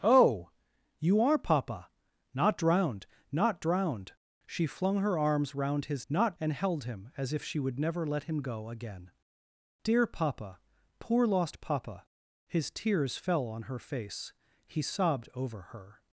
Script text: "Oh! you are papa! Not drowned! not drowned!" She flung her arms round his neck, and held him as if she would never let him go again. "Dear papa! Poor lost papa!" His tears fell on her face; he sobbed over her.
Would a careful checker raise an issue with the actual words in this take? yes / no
yes